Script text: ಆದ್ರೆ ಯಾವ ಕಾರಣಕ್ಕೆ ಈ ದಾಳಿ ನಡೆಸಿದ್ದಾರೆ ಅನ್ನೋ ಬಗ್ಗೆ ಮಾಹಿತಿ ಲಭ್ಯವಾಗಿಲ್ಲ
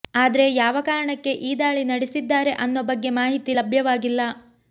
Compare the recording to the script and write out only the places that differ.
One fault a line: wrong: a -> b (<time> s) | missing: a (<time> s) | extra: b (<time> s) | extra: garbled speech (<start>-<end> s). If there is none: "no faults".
no faults